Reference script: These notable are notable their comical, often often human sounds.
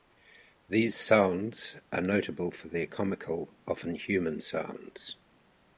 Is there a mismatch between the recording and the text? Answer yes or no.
yes